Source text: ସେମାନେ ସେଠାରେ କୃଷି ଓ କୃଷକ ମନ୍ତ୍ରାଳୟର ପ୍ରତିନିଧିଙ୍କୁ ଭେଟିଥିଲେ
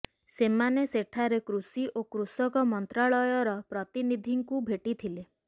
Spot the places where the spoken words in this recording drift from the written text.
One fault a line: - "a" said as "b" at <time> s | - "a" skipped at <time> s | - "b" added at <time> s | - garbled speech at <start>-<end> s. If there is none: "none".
none